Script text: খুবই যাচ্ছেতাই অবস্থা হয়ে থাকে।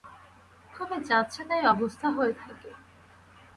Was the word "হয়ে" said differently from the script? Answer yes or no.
no